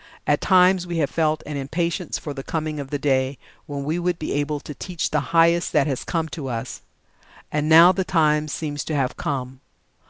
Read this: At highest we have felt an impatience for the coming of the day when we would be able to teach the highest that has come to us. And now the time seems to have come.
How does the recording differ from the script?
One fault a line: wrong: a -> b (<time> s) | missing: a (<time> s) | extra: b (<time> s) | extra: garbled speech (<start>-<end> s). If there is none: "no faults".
wrong: highest -> times (0.4 s)